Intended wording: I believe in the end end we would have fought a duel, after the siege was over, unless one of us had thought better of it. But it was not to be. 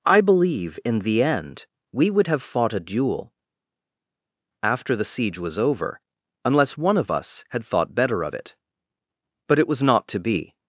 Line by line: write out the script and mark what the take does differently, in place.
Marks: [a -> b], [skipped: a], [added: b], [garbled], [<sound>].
I believe in the end [skipped: end] we would have fought a duel, after the siege was over, unless one of us had thought better of it. But it was not to be.